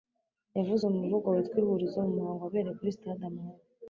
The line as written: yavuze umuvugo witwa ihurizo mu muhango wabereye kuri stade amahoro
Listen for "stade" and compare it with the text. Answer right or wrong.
right